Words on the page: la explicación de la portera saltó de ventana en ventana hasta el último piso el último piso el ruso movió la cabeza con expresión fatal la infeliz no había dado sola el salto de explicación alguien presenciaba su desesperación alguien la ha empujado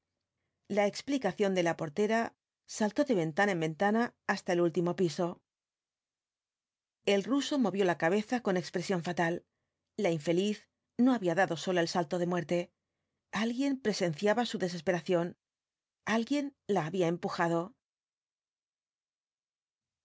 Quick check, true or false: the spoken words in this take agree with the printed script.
false